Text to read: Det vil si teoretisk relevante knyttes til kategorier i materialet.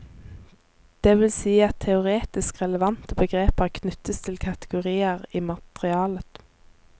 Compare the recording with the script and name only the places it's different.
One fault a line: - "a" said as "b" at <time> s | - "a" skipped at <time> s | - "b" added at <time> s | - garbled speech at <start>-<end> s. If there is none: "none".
- "at" added at 1.6 s
- "begreper" added at 3.2 s